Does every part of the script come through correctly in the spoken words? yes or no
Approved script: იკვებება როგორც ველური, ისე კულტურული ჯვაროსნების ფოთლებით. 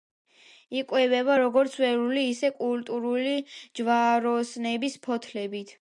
yes